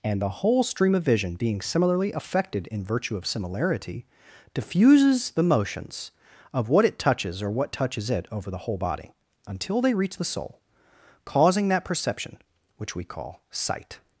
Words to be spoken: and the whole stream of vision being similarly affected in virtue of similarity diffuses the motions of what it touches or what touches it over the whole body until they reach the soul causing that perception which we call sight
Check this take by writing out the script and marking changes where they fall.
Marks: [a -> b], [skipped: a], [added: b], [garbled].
and the whole stream of vision being similarly affected in virtue of similarity diffuses the motions of what it touches or what touches it over the whole body until they reach the soul causing that perception which we call sight